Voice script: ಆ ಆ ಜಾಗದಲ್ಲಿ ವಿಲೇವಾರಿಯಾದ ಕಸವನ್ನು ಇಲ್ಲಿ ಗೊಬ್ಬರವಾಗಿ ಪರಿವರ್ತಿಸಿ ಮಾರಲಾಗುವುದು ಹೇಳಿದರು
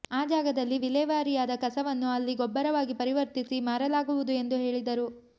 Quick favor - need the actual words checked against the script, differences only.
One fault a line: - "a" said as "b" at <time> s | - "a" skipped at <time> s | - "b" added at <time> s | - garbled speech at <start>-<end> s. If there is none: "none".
- "ಆ" skipped at 0.2 s
- "ಇಲ್ಲಿ" said as "ಅಲ್ಲಿ" at 2.1 s
- "ಎಂದು" added at 4.3 s